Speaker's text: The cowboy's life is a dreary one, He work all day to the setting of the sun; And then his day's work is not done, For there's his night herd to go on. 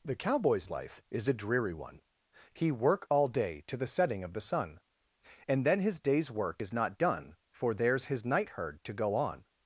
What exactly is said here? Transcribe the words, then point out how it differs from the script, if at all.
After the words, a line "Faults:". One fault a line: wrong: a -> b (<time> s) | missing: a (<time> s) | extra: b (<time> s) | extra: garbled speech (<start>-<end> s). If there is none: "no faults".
The cowboy's life is a dreary one, He work all day to the setting of the sun; And then his day's work is not done, For there's his night herd to go on.
Faults:
no faults